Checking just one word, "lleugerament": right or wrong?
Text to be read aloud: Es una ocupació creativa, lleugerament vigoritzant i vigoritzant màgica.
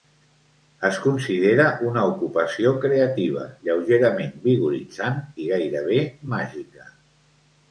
right